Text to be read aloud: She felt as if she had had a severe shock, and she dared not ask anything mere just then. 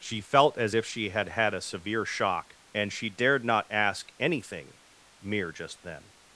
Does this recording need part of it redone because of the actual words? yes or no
no